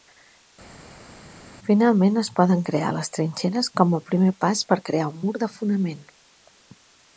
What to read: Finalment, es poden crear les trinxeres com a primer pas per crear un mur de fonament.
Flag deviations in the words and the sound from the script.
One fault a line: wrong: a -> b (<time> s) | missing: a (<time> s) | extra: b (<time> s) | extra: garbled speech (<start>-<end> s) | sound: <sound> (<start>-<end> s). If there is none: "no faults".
no faults